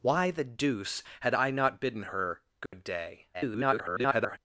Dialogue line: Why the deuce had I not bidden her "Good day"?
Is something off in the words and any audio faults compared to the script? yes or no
yes